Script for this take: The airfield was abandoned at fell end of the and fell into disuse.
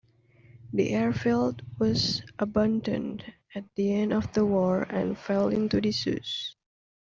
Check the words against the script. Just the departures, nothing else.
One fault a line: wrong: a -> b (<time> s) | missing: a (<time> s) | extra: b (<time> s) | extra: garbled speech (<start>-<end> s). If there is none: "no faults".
wrong: fell -> the (3.8 s)
extra: war (4.5 s)